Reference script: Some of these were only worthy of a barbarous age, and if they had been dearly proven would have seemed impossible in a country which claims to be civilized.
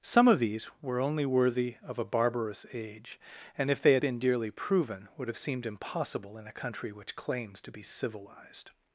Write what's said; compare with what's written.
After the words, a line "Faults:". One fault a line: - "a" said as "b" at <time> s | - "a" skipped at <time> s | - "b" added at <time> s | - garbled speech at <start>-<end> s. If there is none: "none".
Some of these were only worthy of a barbarous age, and if they had been dearly proven would have seemed impossible in a country which claims to be civilized.
Faults:
none